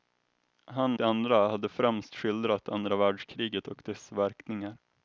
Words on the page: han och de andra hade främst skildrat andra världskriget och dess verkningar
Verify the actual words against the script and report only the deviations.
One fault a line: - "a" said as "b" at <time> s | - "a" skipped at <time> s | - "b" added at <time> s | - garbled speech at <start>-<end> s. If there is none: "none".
- "och" skipped at 1.0 s